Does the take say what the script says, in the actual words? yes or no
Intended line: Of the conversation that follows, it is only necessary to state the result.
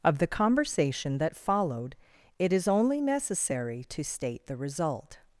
no